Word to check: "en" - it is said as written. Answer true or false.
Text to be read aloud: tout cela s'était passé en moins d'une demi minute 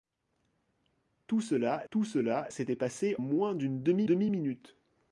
false